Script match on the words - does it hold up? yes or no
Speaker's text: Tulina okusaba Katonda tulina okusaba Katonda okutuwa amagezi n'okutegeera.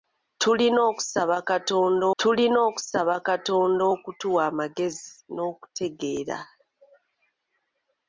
yes